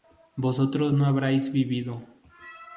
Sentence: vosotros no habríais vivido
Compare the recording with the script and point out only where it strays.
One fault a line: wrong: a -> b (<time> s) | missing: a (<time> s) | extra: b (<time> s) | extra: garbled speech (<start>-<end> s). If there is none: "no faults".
no faults